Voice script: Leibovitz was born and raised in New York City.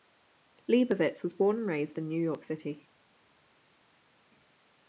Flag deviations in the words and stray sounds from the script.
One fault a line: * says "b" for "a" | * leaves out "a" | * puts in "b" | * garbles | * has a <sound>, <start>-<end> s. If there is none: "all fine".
all fine